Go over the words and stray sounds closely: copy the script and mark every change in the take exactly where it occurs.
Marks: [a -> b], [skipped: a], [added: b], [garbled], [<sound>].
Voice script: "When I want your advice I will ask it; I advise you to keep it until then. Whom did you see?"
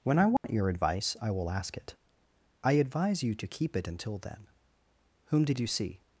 "When I want [dropout] your advice I will ask it; I advise you to keep it until then. Whom did you see?"